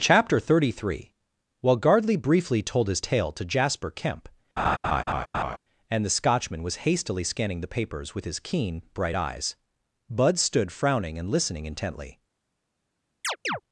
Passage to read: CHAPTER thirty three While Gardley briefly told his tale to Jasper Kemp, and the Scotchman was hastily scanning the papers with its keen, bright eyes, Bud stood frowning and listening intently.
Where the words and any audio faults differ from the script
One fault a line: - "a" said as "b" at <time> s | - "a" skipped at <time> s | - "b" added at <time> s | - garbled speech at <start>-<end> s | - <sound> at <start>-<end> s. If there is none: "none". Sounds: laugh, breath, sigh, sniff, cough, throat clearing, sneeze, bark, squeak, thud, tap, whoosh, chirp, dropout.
- laugh at 4.6-5.6 s
- "its" said as "his" at 8.2 s
- chirp at 13.2-13.6 s